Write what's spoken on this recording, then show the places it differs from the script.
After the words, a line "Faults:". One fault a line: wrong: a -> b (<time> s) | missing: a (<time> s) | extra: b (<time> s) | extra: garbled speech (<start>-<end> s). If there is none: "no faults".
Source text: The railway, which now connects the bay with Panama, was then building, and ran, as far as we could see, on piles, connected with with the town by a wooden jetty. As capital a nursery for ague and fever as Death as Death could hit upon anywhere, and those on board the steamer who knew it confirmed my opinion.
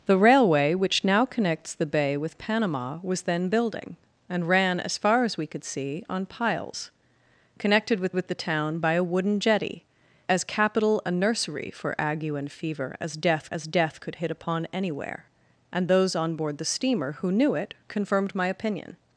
The railway, which now connects the bay with Panama, was then building, and ran, as far as we could see, on piles, connected with with the town by a wooden jetty. As capital a nursery for ague and fever as Death as Death could hit upon anywhere, and those on board the steamer who knew it confirmed my opinion.
Faults:
no faults